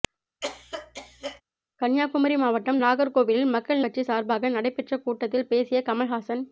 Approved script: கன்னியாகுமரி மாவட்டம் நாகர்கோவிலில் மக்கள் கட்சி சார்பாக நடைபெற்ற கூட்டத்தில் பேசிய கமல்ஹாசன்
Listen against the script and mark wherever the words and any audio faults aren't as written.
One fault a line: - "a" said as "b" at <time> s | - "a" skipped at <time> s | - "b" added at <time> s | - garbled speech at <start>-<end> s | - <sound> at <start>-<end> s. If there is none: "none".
- cough at 0.4-1.4 s